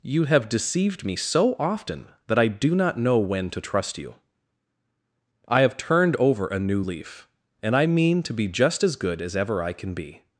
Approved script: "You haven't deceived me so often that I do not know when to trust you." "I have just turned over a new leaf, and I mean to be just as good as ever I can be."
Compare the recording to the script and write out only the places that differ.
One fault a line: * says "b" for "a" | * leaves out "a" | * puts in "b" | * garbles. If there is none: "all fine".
* says "have" for "haven't"
* leaves out "just"